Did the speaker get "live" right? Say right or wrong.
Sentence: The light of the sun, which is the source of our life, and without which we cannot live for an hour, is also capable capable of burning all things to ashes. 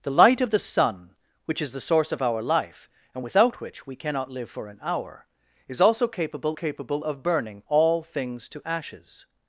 right